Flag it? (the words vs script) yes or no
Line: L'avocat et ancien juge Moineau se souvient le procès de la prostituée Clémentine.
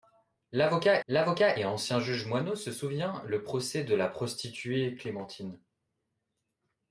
yes